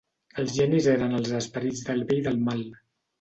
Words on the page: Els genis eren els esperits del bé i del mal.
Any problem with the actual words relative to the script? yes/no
no